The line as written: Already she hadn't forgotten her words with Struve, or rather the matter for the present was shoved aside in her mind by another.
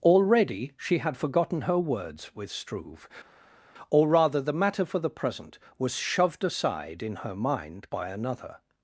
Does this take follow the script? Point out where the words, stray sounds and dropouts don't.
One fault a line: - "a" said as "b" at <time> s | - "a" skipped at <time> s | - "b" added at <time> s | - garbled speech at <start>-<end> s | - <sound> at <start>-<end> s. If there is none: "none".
- "hadn't" said as "had" at 1.0 s